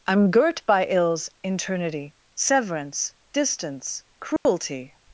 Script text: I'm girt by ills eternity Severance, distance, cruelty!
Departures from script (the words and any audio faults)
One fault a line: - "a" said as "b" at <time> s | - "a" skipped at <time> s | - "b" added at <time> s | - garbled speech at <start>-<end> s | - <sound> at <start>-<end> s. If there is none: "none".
- dropout at 4.4-4.5 s